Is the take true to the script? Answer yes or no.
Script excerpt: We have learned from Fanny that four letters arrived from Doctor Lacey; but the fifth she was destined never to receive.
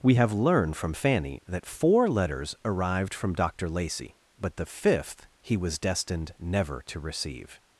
no